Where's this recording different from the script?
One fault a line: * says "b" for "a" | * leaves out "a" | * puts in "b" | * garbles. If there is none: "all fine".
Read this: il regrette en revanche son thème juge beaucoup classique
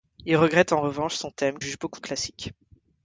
all fine